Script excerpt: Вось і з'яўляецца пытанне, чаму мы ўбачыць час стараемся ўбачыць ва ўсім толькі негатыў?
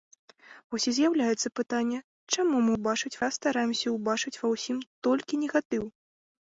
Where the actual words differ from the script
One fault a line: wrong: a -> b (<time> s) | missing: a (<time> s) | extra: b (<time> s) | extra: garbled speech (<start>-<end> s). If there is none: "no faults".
no faults